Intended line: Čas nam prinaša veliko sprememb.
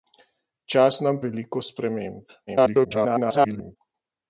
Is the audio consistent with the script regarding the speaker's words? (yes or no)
no